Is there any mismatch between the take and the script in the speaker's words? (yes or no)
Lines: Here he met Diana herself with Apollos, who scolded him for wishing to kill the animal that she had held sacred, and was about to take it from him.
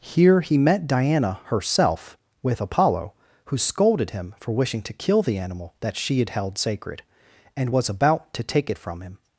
yes